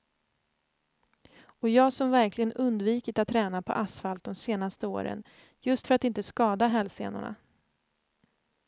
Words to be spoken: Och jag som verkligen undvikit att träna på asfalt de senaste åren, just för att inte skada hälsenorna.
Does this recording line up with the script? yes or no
yes